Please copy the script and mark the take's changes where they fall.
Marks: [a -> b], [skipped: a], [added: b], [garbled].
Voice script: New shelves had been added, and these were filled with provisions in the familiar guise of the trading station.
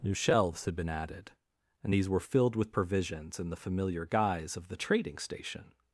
New shelves had been added, and these were filled with provisions in the familiar guise of the trading station.